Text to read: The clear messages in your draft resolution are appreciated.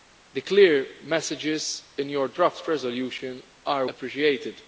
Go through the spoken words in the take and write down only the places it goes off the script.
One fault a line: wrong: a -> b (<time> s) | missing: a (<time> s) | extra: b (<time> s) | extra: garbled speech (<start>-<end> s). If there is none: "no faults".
no faults